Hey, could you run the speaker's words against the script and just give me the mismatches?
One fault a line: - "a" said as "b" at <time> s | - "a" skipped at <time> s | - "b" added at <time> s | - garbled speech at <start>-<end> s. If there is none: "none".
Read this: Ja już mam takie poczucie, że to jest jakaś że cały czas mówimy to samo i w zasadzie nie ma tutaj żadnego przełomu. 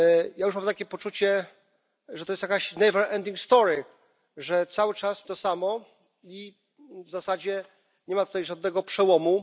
- "mówimy" skipped at 5.3 s